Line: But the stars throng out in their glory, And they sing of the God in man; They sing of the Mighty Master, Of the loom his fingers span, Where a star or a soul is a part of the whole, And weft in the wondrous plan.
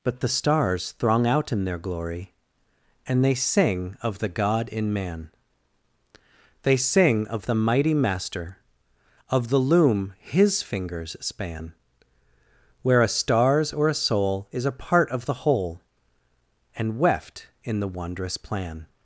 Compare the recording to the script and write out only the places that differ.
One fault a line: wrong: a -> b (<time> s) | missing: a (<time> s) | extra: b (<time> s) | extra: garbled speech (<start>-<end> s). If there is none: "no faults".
wrong: star -> stars (13.1 s)